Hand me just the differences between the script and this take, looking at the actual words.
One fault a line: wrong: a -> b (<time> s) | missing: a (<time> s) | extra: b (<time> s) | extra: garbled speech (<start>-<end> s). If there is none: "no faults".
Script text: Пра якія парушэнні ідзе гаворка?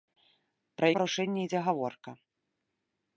missing: якія (0.9 s)